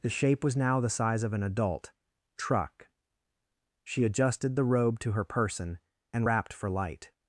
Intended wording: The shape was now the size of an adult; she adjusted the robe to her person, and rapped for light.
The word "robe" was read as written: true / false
true